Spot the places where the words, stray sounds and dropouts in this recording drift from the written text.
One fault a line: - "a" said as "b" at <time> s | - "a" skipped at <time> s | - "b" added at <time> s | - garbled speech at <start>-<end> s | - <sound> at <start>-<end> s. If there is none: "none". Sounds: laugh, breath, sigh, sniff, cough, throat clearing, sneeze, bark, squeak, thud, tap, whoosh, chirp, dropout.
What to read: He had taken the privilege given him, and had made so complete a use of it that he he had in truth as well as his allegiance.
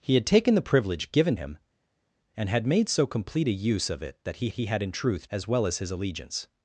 none